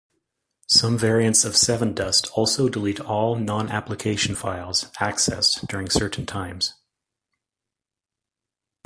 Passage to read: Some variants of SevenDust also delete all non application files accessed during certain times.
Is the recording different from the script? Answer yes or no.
no